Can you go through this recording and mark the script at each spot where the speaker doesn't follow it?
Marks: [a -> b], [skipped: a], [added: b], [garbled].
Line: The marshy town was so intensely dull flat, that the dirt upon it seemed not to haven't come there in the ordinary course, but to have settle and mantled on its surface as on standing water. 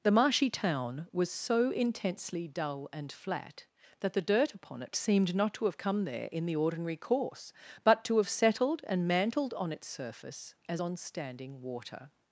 The marshy town was so intensely dull [added: and] flat, that the dirt upon it seemed not to [haven't -> have] come there in the ordinary course, but to have [settle -> settled] and mantled on its surface as on standing water.